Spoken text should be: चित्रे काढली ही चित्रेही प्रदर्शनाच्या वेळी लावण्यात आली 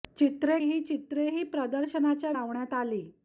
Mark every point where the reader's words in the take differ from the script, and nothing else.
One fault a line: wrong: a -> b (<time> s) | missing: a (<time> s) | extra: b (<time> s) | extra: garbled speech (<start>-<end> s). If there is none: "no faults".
missing: काढली (0.6 s)
missing: वेळी (2.3 s)